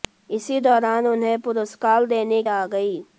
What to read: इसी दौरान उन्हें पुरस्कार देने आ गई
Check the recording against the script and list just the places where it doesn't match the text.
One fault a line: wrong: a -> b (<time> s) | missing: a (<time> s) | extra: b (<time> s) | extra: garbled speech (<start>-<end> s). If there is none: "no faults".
no faults